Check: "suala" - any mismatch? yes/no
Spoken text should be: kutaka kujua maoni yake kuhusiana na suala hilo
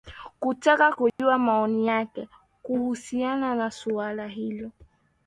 no